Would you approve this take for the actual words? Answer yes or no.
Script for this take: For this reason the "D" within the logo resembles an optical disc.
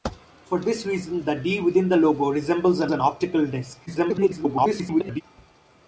no